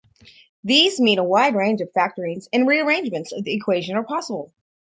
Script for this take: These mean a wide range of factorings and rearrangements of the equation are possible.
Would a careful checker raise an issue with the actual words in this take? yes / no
no